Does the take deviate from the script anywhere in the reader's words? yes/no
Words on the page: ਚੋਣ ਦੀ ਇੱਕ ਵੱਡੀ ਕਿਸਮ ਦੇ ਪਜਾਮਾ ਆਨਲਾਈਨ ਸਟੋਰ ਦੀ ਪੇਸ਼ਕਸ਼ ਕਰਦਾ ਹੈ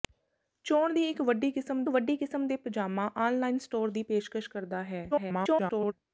yes